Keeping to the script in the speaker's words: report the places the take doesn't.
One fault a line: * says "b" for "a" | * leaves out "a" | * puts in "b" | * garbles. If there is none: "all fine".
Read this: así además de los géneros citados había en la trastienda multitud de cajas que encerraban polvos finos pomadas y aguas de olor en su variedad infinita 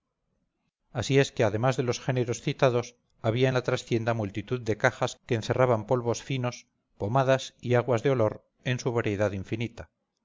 * puts in "es que"